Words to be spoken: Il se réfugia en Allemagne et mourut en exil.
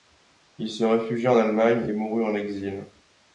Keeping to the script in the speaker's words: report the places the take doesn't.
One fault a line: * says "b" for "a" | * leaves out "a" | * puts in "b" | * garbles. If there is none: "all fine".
all fine